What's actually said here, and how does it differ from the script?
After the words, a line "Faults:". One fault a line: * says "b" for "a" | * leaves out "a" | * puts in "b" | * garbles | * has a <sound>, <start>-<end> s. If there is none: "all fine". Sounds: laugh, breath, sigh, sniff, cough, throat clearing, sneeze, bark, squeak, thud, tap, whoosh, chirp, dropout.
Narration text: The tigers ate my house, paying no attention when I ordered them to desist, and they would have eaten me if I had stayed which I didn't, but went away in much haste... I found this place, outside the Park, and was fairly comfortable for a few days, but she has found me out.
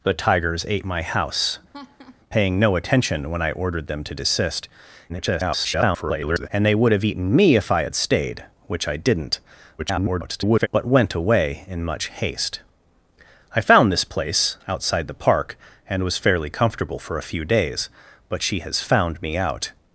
The tigers ate my house, paying no attention when I ordered them to desist, [garbled] and they would have eaten me if I had stayed which I didn't, [garbled] but went away in much haste... I found this place, outside the Park, and was fairly comfortable for a few days, but she has found me out.
Faults:
* has a laugh, 1.7-2.2 s
* garbles
* garbles